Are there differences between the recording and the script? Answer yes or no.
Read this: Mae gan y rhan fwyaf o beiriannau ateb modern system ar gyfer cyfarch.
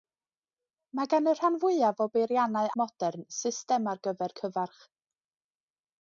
yes